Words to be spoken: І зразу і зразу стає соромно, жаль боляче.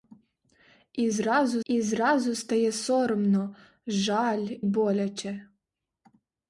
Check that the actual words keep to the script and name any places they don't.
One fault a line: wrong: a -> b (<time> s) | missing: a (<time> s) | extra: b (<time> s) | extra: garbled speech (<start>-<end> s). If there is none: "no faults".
no faults